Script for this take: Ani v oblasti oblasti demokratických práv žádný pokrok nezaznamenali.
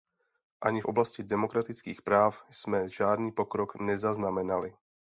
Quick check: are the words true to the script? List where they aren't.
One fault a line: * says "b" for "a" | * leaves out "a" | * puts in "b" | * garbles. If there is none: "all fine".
* leaves out "oblasti"
* puts in "jsme"